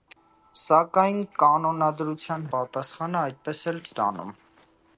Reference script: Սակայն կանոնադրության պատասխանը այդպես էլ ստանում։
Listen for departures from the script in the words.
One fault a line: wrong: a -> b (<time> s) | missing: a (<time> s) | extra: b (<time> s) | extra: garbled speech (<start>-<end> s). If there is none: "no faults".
no faults